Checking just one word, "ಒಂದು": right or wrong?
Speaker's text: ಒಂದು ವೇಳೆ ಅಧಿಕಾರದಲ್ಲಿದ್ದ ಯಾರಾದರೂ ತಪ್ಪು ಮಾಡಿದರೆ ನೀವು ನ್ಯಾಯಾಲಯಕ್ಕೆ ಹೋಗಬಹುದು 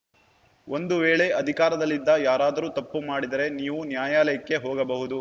right